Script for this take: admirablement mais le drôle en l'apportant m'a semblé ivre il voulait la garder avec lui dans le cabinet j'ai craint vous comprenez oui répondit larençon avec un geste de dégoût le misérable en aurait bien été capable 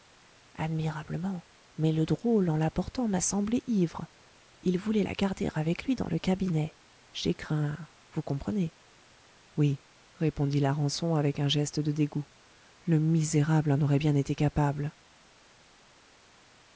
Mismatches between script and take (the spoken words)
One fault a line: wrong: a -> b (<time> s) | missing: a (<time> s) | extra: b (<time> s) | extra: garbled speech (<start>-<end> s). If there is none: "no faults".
no faults